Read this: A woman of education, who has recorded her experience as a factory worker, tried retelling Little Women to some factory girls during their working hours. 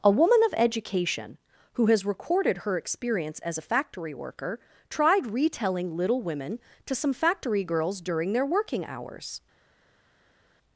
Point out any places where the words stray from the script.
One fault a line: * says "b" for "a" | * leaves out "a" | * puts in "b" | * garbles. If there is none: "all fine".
all fine